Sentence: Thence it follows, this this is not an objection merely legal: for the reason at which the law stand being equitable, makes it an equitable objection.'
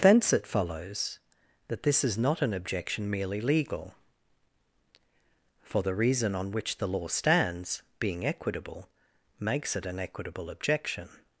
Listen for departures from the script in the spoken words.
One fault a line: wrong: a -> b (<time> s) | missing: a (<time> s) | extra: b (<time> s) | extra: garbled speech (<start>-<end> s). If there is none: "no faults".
wrong: this -> that (1.7 s)
wrong: at -> on (6.3 s)
wrong: stand -> stands (7.1 s)